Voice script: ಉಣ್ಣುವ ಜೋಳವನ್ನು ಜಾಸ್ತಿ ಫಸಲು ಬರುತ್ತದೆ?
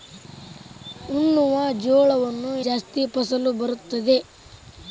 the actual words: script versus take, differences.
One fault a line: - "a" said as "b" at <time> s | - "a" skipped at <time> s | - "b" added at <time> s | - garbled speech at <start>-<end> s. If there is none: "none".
none